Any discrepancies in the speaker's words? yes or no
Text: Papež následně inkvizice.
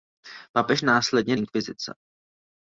no